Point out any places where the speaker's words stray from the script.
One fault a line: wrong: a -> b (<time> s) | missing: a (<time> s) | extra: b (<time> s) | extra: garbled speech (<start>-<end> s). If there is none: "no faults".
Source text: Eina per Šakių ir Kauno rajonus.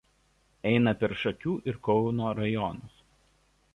no faults